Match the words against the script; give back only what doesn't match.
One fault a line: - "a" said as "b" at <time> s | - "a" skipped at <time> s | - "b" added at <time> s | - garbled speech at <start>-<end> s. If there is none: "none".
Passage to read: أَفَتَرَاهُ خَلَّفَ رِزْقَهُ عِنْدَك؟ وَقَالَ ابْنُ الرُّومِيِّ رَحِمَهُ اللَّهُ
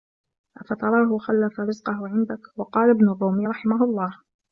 none